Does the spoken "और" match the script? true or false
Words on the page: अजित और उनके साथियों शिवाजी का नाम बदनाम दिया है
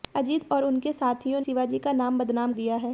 true